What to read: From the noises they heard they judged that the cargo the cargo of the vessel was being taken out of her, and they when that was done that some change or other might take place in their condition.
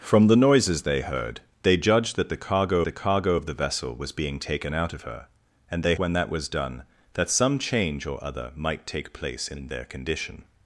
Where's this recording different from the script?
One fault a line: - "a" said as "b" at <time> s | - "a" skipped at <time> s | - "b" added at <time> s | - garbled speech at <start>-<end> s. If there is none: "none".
none